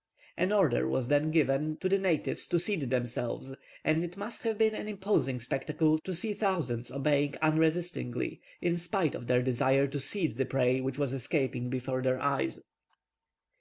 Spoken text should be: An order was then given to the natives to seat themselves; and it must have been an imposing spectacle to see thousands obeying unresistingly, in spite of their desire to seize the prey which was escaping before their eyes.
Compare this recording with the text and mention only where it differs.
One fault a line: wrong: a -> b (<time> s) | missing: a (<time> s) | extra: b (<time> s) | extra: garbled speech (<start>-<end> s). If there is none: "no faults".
no faults